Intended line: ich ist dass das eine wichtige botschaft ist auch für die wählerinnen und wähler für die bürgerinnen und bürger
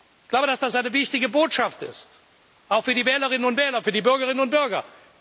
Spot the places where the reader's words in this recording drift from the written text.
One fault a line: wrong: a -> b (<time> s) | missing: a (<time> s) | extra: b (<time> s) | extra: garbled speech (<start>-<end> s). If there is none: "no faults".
wrong: ist -> glaube (0.3 s)